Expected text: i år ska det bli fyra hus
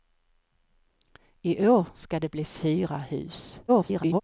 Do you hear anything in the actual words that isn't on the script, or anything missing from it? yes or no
yes